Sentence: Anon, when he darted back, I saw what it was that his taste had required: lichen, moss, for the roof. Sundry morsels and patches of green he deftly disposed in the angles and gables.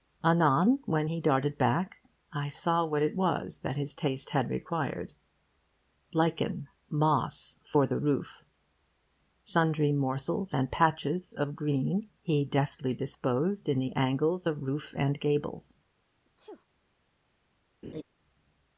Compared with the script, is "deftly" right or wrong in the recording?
right